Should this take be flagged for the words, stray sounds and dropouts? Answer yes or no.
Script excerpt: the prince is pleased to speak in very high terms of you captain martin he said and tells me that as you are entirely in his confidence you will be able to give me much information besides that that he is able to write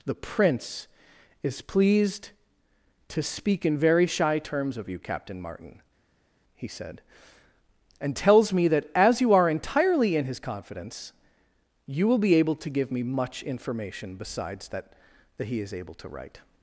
yes